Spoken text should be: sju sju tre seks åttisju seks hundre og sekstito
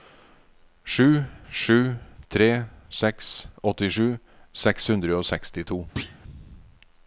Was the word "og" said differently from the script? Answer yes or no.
no